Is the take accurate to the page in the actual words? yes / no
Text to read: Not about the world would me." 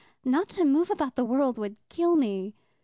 no